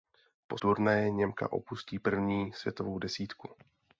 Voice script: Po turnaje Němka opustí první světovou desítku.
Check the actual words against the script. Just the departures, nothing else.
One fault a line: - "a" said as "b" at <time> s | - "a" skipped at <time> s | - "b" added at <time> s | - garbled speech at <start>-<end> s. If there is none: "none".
none